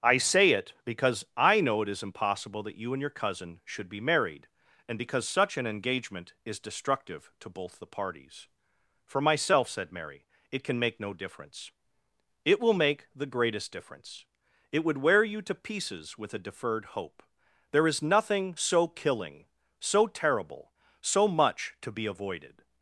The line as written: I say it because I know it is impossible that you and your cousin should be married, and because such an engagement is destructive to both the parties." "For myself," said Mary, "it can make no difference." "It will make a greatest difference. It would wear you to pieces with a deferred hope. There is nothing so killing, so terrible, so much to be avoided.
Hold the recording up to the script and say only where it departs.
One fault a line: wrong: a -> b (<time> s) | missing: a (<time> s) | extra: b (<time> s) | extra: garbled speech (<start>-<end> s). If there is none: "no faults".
wrong: a -> the (13.1 s)